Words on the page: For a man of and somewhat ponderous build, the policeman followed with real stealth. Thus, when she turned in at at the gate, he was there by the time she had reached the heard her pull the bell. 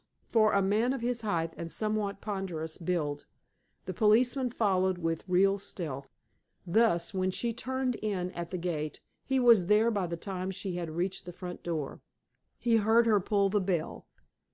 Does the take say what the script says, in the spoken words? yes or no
no